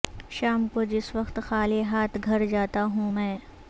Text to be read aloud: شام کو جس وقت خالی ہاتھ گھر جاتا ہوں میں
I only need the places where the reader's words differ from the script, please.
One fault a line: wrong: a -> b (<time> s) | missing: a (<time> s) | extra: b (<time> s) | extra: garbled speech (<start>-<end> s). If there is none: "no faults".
no faults